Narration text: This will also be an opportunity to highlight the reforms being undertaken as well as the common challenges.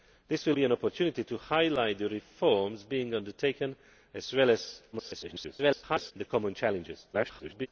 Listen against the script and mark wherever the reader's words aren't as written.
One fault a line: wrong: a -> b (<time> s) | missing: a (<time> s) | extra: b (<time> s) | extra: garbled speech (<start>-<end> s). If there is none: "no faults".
missing: also (0.6 s)
extra: garbled speech (4.9-6.1 s)
extra: garbled speech (7.1-7.7 s)